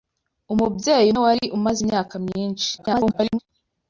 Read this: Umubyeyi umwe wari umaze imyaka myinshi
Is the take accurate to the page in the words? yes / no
no